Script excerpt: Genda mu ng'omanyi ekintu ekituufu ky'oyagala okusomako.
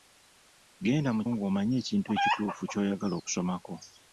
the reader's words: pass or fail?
pass